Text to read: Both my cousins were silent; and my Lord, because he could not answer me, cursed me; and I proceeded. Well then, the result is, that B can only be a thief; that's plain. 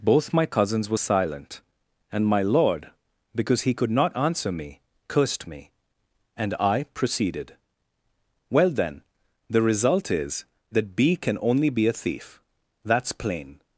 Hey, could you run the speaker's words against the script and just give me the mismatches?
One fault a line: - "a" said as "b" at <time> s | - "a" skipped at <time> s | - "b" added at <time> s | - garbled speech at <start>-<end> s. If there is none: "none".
none